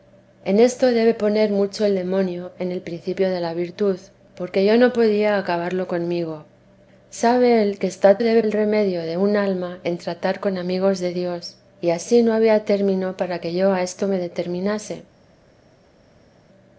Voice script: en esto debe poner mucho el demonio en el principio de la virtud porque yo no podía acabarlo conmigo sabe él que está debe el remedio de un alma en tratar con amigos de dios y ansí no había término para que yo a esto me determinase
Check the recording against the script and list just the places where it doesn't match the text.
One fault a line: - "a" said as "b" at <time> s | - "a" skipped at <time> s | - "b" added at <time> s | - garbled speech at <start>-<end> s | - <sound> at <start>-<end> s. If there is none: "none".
none